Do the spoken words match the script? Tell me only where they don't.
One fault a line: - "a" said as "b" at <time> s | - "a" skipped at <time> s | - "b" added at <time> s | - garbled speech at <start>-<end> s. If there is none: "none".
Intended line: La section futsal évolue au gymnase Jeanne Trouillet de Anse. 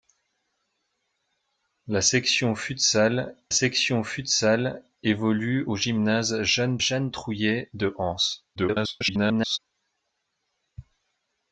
- "section futsal" added at 3.5 s
- "Jeanne" added at 6.8 s
- garbled speech at 8.6-9.6 s